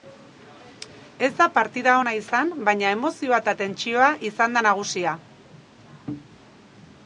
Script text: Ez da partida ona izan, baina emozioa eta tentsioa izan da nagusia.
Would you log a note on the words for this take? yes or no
no